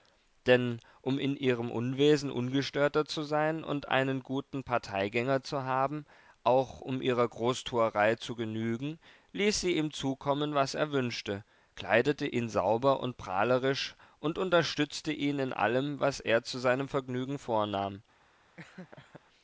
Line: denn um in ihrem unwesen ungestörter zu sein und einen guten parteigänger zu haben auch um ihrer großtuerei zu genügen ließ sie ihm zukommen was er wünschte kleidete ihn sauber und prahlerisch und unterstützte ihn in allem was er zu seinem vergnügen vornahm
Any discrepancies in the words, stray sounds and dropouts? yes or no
yes